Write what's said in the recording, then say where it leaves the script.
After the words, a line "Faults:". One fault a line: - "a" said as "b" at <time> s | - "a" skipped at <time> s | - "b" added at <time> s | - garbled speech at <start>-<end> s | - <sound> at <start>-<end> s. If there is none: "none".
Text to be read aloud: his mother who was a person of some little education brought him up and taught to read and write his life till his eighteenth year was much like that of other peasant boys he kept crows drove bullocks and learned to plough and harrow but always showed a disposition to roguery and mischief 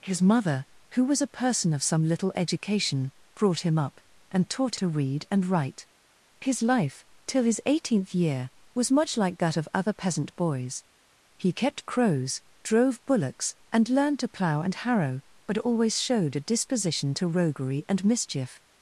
his mother who was a person of some little education brought him up and taught to read and write his life till his eighteenth year was much like that of other peasant boys he kept crows drove bullocks and learned to plough and harrow but always showed a disposition to roguery and mischief
Faults:
none